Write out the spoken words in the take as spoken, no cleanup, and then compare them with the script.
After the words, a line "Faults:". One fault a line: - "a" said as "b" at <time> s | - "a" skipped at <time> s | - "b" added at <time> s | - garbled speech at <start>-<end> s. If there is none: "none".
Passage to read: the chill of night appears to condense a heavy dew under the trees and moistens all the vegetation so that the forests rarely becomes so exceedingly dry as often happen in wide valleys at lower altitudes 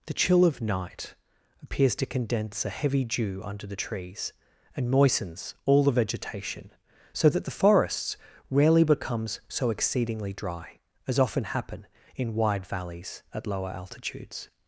the chill of night appears to condense a heavy dew under the trees and moistens all the vegetation so that the forests rarely becomes so exceedingly dry as often happen in wide valleys at lower altitudes
Faults:
none